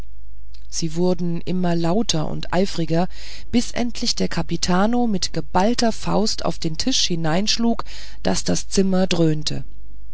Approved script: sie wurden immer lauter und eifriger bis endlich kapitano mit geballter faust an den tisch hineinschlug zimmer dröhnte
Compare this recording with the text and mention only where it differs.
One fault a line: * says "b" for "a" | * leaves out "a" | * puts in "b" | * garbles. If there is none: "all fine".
* puts in "der"
* says "auf" for "an"
* puts in "daß das"